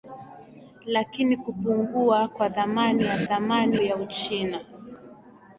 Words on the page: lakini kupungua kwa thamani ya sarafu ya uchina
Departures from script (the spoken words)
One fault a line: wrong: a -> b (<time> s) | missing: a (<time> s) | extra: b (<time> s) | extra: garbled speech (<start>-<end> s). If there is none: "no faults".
wrong: sarafu -> thamani (3.2 s)